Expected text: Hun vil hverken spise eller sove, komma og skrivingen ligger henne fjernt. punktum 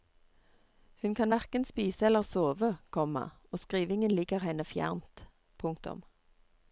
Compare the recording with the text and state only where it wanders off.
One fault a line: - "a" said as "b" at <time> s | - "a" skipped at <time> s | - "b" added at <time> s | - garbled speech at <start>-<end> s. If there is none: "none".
- "vil" said as "kan" at 1.1 s